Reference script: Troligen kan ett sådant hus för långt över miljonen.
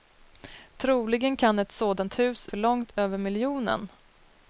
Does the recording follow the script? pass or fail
pass